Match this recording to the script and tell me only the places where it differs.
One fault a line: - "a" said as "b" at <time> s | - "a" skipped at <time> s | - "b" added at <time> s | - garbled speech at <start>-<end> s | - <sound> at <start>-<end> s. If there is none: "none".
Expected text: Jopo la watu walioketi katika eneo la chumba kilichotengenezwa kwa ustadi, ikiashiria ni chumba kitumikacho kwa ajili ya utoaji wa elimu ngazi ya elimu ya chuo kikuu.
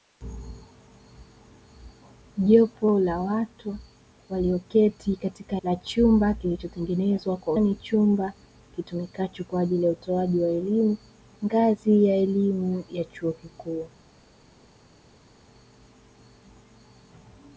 - "eneo" skipped at 5.5 s
- "ustadi ikiashiria" skipped at 7.5 s